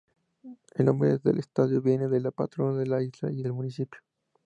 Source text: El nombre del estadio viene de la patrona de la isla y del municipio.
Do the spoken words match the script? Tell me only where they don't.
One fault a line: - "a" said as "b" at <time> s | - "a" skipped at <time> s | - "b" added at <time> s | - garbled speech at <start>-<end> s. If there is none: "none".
none